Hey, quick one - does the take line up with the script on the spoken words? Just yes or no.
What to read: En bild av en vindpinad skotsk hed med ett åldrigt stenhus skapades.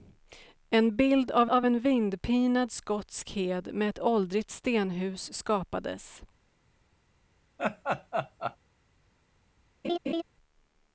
no